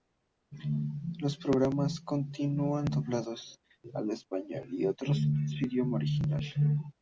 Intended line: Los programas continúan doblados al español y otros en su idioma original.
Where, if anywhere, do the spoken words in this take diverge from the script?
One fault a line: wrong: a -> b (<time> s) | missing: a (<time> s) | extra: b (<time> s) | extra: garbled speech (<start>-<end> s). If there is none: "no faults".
no faults